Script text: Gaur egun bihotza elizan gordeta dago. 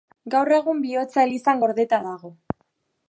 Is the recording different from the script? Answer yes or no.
no